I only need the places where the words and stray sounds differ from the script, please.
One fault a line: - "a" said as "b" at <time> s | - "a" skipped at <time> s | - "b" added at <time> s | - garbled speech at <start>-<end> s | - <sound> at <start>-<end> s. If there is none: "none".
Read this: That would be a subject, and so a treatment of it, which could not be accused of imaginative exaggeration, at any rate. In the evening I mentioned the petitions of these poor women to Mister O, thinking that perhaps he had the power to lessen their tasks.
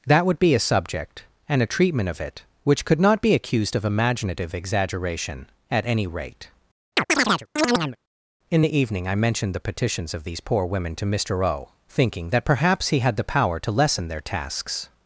- "so" skipped at 1.6 s
- chirp at 7.0-8.0 s